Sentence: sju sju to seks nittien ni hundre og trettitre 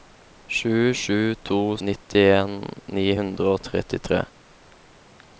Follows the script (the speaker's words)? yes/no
no